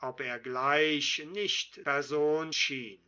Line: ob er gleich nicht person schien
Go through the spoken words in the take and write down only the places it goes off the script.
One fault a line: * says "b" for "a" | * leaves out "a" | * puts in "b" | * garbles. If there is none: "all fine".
all fine